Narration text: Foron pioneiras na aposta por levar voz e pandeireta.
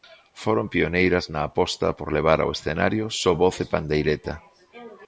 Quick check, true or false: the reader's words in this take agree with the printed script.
false